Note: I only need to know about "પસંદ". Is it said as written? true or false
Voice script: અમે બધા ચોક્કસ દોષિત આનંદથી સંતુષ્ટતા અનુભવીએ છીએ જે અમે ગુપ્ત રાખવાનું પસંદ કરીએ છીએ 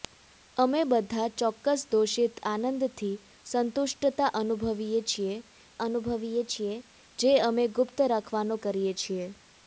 false